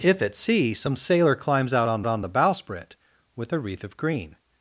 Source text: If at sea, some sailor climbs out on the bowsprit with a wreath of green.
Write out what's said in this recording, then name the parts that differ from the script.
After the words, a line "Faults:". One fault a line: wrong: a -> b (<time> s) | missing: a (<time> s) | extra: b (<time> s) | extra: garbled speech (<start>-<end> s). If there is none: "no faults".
If at sea, some sailor climbs out on on the bowsprit with a wreath of green.
Faults:
extra: on (2.1 s)